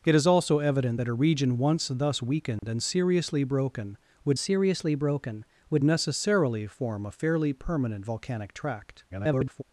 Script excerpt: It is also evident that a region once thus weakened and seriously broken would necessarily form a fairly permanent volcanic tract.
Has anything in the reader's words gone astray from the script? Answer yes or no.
yes